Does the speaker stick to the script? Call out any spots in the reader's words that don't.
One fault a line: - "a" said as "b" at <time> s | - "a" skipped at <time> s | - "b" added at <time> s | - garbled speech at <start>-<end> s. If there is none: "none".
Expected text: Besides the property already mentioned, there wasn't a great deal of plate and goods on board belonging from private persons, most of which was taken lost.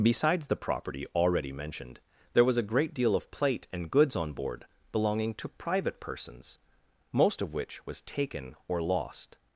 - "wasn't" said as "was" at 2.5 s
- "from" said as "to" at 5.3 s
- "or" added at 8.7 s